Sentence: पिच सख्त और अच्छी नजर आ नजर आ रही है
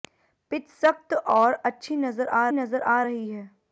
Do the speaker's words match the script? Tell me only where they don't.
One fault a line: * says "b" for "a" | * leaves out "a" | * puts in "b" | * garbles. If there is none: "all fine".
all fine